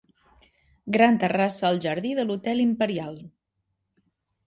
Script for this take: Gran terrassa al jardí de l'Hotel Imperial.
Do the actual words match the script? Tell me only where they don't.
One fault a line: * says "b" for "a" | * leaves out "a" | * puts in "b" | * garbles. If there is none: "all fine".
all fine